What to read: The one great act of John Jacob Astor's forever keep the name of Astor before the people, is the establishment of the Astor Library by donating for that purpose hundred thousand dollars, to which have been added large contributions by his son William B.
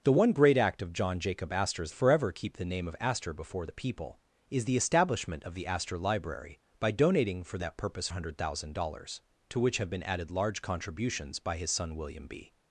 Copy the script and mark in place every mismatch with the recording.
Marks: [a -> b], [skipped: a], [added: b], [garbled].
The one great act of John Jacob Astor's forever keep the name of Astor before the people, is the establishment of the Astor Library by donating for that purpose hundred thousand dollars, to which have been added large contributions by his son William B.